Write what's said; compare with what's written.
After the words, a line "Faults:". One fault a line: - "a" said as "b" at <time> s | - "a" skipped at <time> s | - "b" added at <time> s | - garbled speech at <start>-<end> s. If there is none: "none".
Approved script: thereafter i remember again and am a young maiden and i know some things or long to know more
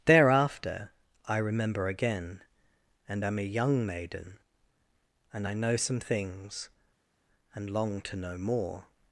thereafter i remember again and am a young maiden and i know some things and long to know more
Faults:
- "or" said as "and" at 7.5 s